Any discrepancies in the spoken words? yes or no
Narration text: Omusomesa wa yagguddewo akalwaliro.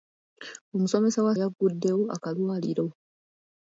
no